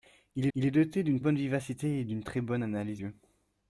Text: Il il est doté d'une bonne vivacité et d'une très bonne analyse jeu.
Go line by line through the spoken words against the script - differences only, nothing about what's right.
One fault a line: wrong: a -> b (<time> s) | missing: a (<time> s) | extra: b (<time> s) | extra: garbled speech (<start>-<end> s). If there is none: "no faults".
no faults